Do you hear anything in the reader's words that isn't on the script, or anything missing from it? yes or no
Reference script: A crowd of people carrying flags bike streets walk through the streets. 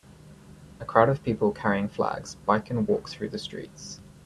yes